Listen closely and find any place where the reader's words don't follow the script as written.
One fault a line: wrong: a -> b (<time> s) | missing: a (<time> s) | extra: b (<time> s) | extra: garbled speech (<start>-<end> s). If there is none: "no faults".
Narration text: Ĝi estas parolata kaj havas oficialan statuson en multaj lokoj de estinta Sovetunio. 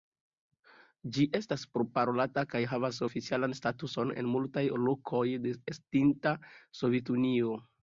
no faults